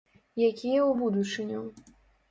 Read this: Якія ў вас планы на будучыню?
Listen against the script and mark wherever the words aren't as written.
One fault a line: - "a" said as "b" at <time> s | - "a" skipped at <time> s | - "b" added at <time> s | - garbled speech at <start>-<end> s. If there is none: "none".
- "вас планы на" skipped at 0.9 s